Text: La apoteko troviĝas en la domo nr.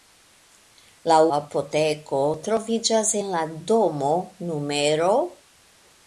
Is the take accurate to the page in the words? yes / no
yes